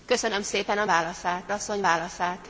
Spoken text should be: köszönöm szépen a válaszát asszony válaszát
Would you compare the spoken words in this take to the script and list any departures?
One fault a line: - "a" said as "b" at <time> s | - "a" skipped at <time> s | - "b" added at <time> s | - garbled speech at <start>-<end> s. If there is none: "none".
none